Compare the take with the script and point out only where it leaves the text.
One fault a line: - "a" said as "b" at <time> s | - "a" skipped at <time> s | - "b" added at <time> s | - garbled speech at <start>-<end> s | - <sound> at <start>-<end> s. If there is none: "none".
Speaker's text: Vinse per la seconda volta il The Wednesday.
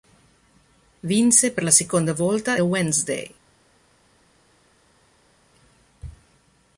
- "il The" skipped at 2.6 s